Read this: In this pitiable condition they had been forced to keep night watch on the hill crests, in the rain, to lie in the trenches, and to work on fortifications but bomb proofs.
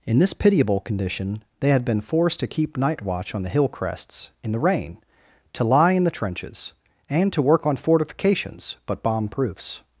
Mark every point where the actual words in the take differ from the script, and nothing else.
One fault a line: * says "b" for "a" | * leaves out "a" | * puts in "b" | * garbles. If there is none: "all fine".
all fine